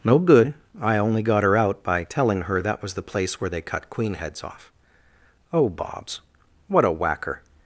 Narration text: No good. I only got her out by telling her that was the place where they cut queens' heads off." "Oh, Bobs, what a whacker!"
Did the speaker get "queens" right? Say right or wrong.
wrong